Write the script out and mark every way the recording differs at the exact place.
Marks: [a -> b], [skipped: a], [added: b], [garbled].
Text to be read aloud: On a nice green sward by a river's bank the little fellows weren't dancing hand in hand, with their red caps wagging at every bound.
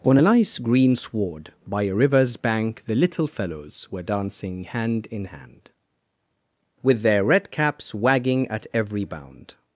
On a nice green sward by a river's bank the little fellows [weren't -> were] dancing hand in hand, with their red caps wagging at every bound.